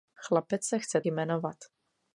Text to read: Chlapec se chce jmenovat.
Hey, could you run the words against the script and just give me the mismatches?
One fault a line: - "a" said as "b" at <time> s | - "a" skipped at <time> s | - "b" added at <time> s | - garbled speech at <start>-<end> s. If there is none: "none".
none